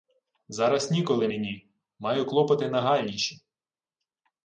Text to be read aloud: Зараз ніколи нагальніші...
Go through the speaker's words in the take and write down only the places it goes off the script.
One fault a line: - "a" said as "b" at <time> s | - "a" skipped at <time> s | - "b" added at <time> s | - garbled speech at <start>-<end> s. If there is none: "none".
- "мені Маю клопоти" added at 1.2 s